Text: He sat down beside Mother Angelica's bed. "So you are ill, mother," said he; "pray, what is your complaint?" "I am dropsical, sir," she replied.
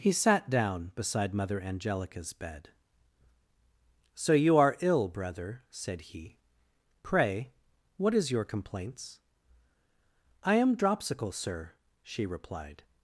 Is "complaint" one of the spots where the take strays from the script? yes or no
yes